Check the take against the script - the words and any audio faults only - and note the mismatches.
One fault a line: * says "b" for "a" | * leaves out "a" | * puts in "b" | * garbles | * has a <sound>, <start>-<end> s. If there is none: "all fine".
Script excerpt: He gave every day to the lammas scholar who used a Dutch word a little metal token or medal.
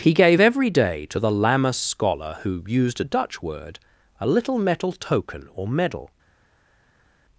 all fine